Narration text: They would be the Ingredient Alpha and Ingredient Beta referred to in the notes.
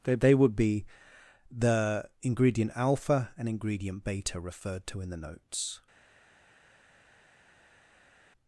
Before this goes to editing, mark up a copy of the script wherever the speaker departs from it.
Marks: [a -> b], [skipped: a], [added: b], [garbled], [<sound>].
They [added: they] would be the Ingredient Alpha and Ingredient Beta referred to in the notes.